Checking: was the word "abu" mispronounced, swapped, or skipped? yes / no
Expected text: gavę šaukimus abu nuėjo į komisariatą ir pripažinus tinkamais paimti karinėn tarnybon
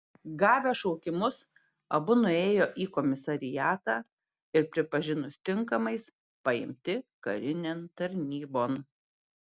no